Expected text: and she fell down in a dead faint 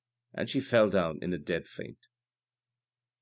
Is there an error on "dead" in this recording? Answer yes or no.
no